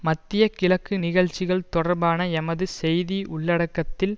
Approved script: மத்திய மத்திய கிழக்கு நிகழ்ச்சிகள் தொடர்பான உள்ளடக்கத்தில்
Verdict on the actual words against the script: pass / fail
fail